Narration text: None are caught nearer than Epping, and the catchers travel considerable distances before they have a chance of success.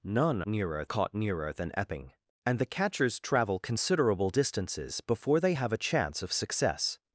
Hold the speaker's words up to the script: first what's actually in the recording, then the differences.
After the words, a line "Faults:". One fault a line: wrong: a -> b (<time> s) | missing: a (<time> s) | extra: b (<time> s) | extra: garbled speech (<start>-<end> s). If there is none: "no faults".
None nearer caught nearer than Epping, and the catchers travel considerable distances before they have a chance of success.
Faults:
wrong: are -> nearer (0.5 s)